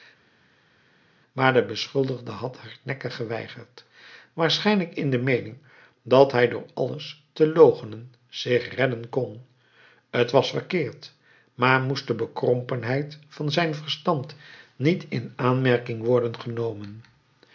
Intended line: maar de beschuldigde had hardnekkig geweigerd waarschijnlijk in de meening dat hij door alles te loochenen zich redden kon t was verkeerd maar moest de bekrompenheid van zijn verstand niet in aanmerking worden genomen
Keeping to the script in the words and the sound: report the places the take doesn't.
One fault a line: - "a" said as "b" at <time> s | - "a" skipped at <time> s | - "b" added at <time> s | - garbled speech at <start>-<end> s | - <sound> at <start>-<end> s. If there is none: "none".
none